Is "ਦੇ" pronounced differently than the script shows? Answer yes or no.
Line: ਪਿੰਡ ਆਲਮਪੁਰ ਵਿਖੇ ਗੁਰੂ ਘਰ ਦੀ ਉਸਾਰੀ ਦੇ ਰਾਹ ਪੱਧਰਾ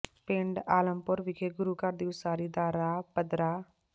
yes